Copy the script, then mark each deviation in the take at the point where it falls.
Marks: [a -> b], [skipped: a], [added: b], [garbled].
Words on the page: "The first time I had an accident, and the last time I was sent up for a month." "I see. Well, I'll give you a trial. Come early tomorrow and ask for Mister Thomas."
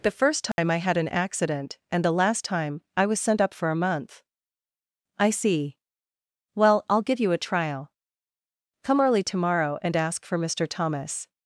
"The first time I had an accident, and the last time I was sent up for a month." "I see. Well, I'll give you a trial. Come early tomorrow and ask for Mister Thomas."